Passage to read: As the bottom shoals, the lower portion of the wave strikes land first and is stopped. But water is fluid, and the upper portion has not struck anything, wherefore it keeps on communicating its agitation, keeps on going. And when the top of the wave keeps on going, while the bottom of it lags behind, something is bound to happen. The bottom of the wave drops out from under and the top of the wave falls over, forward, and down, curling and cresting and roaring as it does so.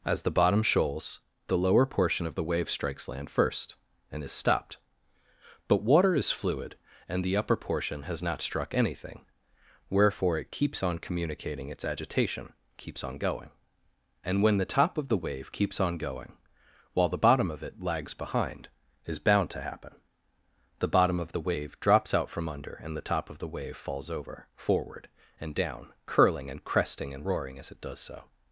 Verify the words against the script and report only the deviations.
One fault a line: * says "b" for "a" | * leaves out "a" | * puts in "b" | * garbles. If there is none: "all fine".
* leaves out "something"